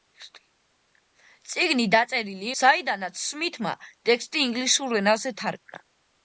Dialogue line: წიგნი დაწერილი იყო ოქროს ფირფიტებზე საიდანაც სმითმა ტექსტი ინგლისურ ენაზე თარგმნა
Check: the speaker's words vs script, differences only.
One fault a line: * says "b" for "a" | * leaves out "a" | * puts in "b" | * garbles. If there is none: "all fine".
* leaves out "იყო ოქროს ფირფიტებზე"